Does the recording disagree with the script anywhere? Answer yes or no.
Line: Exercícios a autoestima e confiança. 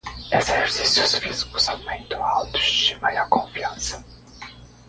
yes